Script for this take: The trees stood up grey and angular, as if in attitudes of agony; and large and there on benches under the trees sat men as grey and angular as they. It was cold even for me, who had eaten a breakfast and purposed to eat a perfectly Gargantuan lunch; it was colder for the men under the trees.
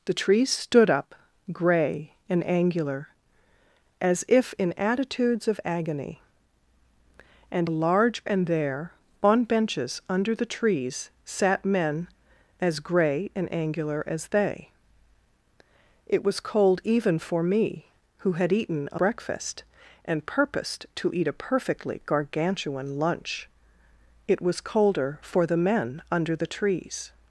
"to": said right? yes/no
yes